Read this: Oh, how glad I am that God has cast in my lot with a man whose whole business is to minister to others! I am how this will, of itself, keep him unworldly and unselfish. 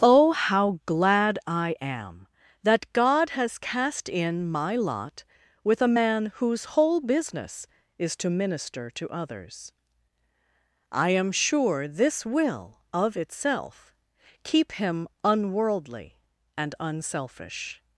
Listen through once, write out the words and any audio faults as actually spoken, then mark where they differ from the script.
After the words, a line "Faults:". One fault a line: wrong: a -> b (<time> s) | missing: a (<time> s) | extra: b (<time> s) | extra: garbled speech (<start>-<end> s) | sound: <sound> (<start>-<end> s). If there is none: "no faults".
Oh, how glad I am that God has cast in my lot with a man whose whole business is to minister to others! I am sure this will, of itself, keep him unworldly and unselfish.
Faults:
wrong: how -> sure (11.3 s)